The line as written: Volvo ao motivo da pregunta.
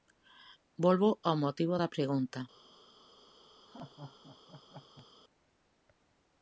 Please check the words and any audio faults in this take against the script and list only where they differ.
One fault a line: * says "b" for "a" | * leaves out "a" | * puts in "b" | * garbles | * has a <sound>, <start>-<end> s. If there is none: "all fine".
* has a laugh, 3.7-5.1 s